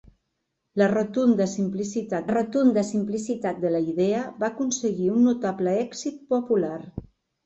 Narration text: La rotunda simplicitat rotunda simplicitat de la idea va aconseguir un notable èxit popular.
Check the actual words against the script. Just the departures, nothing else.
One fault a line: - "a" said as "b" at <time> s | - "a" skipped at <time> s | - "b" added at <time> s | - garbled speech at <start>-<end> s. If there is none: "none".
none